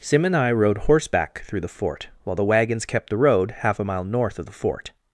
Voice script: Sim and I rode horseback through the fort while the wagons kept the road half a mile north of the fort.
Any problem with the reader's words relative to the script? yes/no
no